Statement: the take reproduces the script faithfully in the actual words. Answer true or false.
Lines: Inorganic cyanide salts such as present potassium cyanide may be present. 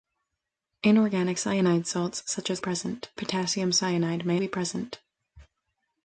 true